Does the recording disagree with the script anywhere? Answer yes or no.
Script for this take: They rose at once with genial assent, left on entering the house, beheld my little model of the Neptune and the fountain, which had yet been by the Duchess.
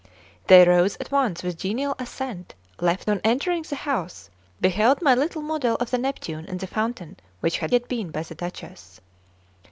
no